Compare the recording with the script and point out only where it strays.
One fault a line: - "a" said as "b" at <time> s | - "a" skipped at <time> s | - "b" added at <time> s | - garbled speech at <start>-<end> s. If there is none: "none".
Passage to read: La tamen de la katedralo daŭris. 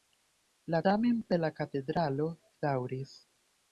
none